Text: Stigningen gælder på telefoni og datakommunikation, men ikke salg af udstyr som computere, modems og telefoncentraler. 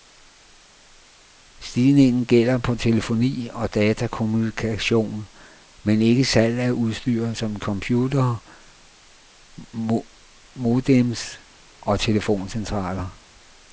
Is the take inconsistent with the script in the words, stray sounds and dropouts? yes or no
no